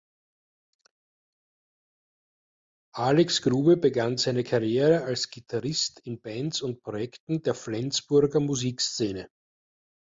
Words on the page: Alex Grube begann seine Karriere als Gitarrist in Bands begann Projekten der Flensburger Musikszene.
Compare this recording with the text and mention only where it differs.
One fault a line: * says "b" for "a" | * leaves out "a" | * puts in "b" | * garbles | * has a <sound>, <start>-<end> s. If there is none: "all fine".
* says "und" for "begann"